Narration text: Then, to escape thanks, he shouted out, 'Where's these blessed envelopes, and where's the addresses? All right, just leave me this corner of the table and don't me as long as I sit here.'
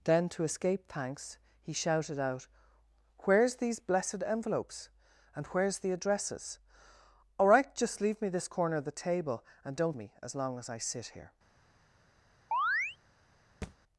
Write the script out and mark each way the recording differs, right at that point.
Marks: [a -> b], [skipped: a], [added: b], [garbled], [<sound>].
Then, to escape thanks, he shouted out, 'Where's these blessed envelopes, and where's the addresses? All right, just leave me this corner of the table and don't me as long as I sit here.' [chirp] [thud]